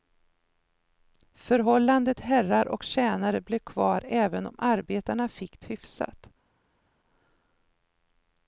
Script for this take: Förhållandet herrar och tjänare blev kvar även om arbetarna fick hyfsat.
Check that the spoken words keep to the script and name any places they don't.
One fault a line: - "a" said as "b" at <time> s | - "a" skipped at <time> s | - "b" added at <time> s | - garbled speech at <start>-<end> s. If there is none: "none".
none